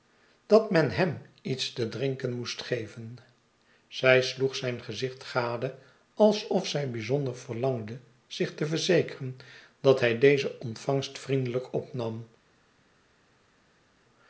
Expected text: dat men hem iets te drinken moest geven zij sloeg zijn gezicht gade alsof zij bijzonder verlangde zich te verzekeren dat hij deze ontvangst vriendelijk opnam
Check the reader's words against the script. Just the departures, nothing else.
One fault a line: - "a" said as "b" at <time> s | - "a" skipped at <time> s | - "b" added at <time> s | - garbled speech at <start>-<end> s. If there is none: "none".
none